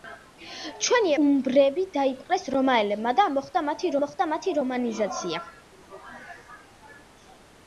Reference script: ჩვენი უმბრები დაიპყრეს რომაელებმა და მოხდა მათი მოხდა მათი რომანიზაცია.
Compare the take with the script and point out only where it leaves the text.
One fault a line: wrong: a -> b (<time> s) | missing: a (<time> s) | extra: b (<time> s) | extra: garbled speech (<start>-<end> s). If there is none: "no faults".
no faults